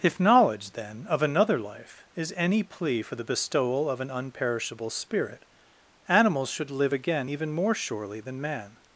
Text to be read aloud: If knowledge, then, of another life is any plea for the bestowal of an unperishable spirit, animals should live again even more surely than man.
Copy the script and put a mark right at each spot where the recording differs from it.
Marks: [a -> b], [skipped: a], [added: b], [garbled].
If knowledge, then, of another life is any plea for the bestowal of an unperishable spirit, animals should live again even more surely than man.